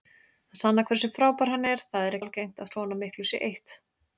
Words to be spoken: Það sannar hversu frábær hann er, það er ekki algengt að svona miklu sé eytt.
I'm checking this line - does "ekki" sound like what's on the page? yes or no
no